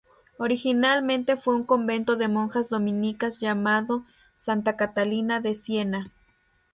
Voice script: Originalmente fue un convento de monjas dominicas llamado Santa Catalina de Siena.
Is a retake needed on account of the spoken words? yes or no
no